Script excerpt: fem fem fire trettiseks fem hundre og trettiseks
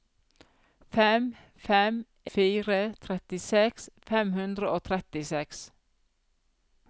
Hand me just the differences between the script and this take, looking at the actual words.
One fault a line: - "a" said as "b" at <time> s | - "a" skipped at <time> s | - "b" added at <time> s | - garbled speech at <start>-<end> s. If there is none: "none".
none